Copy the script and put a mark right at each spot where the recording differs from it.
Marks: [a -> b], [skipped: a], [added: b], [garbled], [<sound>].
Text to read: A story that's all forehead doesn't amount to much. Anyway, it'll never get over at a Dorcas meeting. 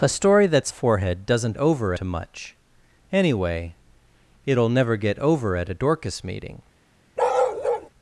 A story that's [skipped: all] forehead doesn't [amount -> over] to much. Anyway, it'll never get over at a Dorcas meeting. [bark]